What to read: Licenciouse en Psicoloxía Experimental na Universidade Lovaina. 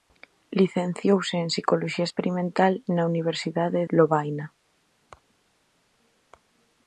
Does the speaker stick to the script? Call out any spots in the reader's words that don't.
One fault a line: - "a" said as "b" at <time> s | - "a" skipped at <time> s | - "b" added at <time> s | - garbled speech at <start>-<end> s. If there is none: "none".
none